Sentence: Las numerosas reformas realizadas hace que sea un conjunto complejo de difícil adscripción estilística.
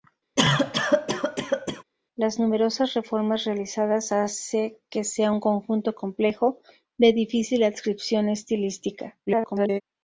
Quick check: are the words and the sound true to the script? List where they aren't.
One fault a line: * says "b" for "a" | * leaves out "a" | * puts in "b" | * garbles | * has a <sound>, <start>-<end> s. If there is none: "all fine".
* has a cough, 0.4-1.8 s
* garbles